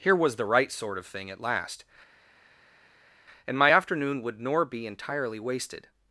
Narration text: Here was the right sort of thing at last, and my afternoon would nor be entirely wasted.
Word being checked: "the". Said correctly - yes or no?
yes